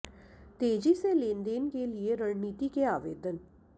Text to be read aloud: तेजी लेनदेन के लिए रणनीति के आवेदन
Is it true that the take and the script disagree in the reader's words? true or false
true